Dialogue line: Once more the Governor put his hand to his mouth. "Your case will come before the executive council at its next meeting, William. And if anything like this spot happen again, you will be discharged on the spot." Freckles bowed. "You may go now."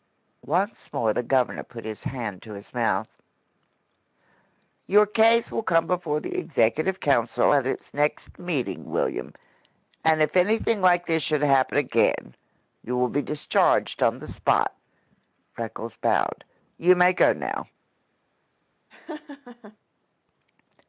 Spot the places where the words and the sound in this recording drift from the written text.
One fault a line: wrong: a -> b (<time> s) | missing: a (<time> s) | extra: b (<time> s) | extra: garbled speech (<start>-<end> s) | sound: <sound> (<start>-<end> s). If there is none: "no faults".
wrong: spot -> should (11.2 s)
sound: laugh (18.9-19.8 s)